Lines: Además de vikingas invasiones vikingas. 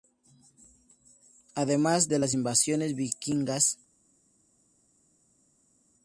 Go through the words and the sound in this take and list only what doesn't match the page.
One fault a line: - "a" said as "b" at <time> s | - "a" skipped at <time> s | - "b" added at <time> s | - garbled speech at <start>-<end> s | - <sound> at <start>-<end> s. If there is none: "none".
- "vikingas" said as "las" at 2.2 s